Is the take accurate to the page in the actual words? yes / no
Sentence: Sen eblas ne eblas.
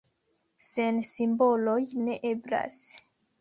no